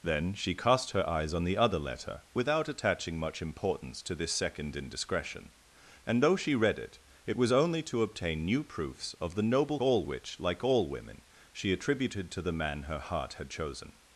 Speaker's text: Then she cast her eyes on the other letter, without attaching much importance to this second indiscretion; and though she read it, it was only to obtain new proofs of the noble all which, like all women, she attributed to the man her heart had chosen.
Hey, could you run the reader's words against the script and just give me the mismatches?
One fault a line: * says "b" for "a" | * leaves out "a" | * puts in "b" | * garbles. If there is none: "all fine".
all fine